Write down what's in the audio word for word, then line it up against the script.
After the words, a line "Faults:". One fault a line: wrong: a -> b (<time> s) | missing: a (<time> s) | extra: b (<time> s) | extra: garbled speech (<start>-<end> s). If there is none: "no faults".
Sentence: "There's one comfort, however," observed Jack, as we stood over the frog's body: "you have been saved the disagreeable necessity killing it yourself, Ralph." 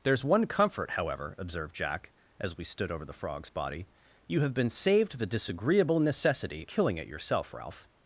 "There's one comfort, however," observed Jack, as we stood over the frog's body: "you have been saved the disagreeable necessity killing it yourself, Ralph."
Faults:
no faults